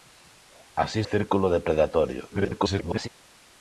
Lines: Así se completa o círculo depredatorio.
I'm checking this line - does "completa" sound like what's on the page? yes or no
no